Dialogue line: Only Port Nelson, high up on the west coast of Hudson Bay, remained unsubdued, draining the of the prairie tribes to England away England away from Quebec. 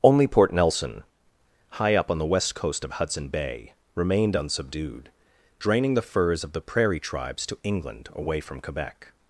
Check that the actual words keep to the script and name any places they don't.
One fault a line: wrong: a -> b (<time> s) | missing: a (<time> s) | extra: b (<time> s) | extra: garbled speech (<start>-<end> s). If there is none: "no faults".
extra: furs (6.0 s)
missing: England away (8.4 s)